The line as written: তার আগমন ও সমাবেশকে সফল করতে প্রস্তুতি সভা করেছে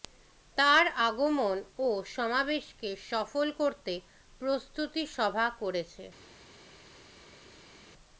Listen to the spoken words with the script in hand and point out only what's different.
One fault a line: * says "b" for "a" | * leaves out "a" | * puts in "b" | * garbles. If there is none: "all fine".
all fine